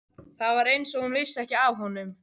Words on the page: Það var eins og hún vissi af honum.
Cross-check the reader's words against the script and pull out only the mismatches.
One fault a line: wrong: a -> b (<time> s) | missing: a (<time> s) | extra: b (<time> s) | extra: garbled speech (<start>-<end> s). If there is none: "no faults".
extra: ekki (1.4 s)